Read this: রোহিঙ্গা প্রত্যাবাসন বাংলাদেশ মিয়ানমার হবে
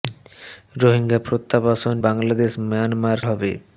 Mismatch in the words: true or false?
false